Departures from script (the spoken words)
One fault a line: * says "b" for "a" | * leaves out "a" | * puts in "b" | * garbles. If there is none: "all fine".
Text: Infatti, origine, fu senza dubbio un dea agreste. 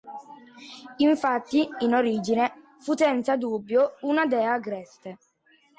* puts in "in"
* says "una" for "un"